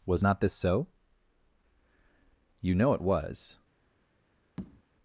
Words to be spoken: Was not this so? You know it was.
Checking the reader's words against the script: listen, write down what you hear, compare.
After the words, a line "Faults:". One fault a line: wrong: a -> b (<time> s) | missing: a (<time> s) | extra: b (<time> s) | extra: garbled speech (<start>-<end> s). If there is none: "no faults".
Was not this so? You know it was.
Faults:
no faults